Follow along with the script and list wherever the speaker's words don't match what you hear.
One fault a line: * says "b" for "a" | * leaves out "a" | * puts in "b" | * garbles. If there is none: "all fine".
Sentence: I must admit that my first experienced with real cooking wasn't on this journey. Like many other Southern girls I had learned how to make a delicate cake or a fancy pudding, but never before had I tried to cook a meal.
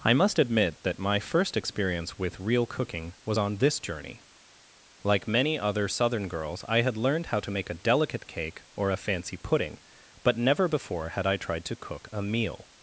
* says "experience" for "experienced"
* says "was" for "wasn't"